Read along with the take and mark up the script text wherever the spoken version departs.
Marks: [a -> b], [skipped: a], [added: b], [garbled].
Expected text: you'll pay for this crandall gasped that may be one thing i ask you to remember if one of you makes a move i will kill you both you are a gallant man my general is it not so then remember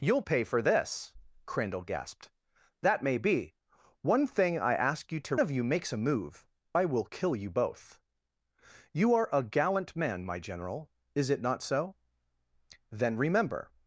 you'll pay for this crandall gasped that may be one thing i ask you to [skipped: remember if one] of you makes a move i will kill you both you are a gallant man my general is it not so then remember